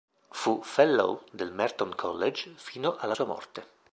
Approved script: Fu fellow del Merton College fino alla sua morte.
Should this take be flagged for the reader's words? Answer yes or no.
no